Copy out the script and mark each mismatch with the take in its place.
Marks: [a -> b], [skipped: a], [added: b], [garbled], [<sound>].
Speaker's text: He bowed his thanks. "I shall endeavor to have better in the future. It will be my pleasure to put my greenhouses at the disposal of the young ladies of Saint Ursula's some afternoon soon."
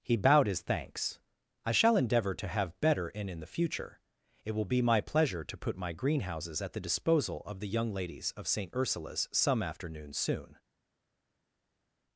He bowed his thanks. "I shall endeavor to have better in [added: in] the future. It will be my pleasure to put my greenhouses at the disposal of the young ladies of Saint Ursula's some afternoon soon."